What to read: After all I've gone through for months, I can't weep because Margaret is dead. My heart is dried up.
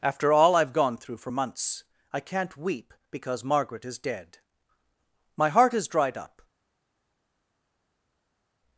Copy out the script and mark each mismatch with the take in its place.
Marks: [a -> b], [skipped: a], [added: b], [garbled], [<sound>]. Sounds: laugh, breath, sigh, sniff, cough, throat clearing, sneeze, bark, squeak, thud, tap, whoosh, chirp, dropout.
After all I've gone through for months, I can't weep because Margaret is dead. My heart is dried up.